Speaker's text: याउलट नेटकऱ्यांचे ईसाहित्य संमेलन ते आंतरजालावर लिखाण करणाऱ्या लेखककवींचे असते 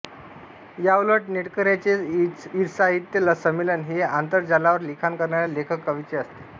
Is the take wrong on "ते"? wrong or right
wrong